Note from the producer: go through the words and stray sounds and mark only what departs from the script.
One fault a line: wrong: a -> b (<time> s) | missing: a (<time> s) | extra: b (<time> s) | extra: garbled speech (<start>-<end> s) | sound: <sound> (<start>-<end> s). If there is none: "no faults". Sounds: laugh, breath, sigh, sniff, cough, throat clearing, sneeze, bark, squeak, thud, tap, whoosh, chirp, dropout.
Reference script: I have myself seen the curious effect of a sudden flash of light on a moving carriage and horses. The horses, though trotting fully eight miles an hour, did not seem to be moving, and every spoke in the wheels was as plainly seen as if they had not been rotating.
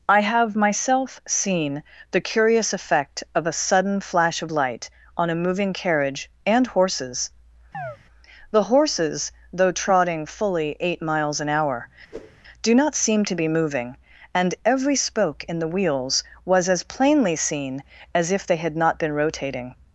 sound: chirp (7.7-8.0 s)
sound: whoosh (12.1-12.4 s)
wrong: did -> do (12.6 s)